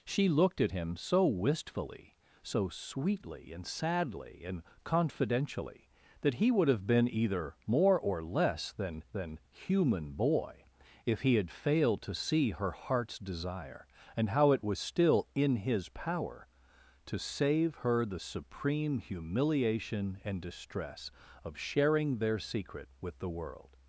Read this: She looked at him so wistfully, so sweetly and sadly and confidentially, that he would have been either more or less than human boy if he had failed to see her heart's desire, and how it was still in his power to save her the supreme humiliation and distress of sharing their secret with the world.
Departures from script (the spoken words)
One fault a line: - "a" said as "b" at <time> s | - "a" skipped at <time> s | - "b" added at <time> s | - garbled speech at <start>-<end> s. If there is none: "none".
- "than" added at 9.1 s